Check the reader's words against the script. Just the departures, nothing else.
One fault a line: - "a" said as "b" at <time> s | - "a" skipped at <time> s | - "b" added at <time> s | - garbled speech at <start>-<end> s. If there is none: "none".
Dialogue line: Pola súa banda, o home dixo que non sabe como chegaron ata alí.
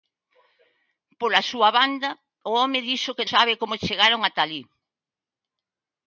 - "non" skipped at 3.3 s